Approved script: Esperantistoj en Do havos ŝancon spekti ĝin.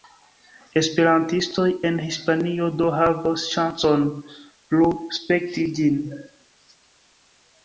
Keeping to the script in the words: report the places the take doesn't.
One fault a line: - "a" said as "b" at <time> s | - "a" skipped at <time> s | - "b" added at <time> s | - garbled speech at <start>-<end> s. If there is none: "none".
- "Hispanio" added at 2.0 s
- "plu" added at 4.4 s